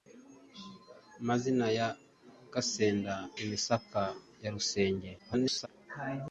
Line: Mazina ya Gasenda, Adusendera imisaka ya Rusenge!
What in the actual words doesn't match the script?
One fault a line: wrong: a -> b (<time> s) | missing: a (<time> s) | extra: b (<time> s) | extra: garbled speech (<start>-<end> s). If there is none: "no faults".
missing: Adusendera (3.1 s)
extra: garbled speech (5.2-5.7 s)